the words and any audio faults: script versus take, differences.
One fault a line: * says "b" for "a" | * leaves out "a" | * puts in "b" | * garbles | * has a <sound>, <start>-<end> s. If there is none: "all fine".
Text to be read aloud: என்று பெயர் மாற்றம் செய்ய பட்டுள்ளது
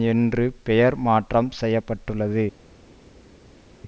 all fine